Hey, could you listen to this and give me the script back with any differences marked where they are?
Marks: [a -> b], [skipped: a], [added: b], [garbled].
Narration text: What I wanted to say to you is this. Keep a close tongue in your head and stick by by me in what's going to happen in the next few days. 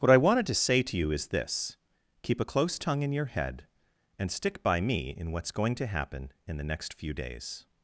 What I wanted to say to you is this. Keep a close tongue in your head and stick by [skipped: by] me in what's going to happen in the next few days.